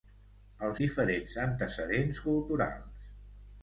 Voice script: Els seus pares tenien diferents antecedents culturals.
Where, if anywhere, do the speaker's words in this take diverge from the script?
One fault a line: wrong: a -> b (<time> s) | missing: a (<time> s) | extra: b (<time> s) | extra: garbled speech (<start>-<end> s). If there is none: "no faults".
missing: seus pares tenien (0.8 s)